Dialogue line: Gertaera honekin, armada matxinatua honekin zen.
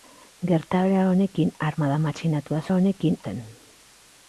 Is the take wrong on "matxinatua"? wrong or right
right